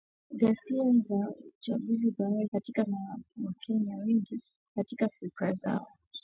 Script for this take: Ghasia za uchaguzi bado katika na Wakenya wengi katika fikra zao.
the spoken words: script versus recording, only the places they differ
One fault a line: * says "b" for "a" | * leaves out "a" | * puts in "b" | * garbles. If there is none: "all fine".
all fine